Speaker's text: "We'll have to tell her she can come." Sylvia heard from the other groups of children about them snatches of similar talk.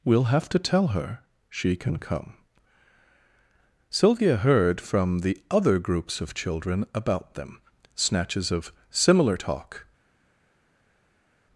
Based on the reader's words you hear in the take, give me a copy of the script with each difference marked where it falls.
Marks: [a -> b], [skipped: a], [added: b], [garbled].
"We'll have to tell her she can come." Sylvia heard from the other groups of children about them snatches of similar talk.